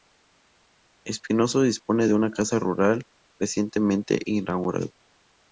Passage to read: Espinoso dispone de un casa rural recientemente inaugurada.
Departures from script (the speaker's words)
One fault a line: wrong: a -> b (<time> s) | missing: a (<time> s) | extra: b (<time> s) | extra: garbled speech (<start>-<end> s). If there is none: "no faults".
wrong: un -> una (2.1 s)